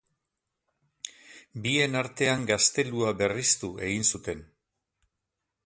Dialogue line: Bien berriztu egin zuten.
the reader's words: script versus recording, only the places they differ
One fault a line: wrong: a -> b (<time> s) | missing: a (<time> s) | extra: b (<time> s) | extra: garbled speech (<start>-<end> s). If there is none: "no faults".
extra: artean gaztelua (2.0 s)